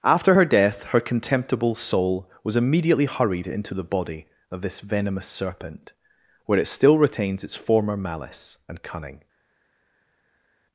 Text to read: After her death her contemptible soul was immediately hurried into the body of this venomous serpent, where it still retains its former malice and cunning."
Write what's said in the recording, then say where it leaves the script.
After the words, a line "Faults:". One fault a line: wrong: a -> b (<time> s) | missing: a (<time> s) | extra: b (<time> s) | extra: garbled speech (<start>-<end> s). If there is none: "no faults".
After her death her contemptible soul was immediately hurried into the body of this venomous serpent, where it still retains its former malice and cunning."
Faults:
no faults